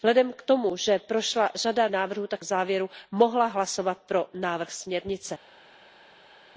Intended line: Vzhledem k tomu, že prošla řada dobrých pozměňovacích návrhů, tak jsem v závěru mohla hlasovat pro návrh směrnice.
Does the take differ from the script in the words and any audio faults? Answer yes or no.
yes